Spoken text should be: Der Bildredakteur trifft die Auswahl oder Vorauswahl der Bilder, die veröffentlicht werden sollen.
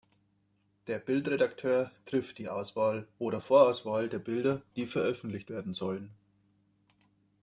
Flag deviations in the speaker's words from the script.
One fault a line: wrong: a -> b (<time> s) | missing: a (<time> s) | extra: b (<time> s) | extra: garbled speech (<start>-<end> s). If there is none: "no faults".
no faults